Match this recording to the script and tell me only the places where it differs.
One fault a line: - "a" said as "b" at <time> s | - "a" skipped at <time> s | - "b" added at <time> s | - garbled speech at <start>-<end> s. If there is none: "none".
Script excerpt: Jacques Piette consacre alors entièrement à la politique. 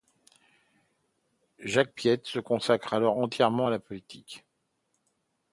- "se" added at 2.2 s